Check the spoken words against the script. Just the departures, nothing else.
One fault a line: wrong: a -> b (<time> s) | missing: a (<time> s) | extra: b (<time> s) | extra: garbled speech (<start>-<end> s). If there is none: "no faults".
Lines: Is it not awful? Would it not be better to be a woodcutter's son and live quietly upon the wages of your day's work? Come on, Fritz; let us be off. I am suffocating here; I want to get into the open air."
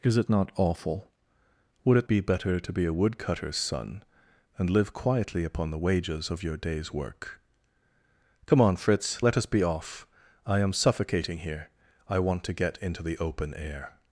missing: not (2.1 s)